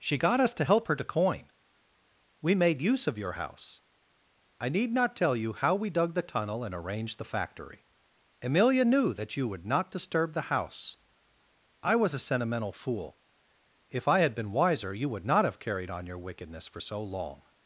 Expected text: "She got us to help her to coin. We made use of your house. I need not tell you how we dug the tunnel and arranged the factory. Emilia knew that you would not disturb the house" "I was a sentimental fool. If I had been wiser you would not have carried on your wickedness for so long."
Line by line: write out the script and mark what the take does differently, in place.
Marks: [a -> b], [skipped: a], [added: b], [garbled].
"She got us to help her to coin. We made use of your house. I need not tell you how we dug the tunnel and arranged the factory. Emilia knew that you would not disturb the house" "I was a sentimental fool. If I had been wiser you would not have carried on your wickedness for so long."